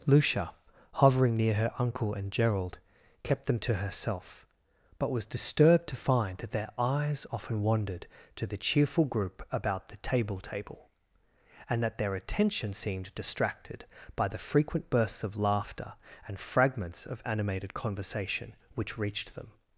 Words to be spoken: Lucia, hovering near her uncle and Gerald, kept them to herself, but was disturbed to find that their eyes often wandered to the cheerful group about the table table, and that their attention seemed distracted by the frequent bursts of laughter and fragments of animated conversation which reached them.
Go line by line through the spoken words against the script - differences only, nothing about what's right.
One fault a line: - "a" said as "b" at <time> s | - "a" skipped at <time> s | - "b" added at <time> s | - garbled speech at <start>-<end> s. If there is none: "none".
none